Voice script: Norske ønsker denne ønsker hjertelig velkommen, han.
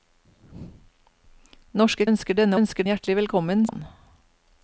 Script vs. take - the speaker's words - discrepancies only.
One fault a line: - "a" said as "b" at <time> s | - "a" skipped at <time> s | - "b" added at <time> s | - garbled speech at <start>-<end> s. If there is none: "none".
none